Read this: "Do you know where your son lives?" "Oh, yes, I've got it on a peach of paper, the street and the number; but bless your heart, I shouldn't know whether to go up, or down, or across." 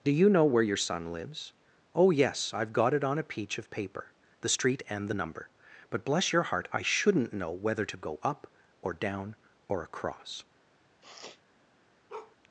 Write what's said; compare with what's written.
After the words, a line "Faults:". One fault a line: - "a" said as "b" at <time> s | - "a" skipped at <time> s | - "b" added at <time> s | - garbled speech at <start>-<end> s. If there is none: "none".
"Do you know where your son lives?" "Oh, yes, I've got it on a peach of paper, the street and the number; but bless your heart, I shouldn't know whether to go up, or down, or across."
Faults:
none